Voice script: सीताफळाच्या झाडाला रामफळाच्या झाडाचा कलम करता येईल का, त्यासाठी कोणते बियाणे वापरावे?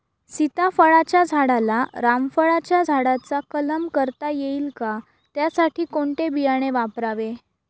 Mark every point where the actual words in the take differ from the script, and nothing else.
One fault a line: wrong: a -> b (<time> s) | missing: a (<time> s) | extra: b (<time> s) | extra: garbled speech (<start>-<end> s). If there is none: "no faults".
no faults